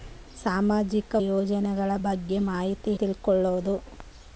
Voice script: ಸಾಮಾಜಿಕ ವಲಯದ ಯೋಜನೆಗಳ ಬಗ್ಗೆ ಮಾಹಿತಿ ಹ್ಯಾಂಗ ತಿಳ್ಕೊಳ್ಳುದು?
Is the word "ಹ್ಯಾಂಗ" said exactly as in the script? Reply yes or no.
no